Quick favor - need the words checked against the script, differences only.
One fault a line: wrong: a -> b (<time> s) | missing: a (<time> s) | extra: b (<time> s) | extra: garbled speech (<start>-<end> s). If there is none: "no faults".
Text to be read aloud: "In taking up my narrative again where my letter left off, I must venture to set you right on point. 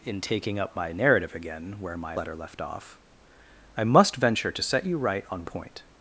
no faults